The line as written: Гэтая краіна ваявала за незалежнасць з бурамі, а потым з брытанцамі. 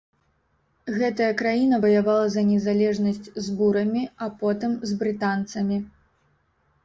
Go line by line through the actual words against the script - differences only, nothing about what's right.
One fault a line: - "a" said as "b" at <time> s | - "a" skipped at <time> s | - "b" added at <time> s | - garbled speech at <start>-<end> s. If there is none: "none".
none